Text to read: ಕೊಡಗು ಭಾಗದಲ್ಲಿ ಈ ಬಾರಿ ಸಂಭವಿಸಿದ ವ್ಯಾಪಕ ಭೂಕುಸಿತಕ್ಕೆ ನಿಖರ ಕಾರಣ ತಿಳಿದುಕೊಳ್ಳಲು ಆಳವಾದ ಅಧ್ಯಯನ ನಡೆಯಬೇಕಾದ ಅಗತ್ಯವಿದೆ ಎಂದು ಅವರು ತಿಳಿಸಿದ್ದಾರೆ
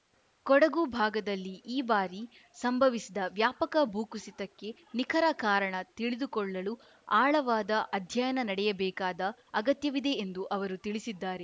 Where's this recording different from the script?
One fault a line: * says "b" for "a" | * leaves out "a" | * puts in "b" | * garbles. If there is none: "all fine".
all fine